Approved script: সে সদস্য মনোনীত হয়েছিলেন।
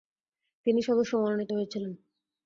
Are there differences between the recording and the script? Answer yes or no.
yes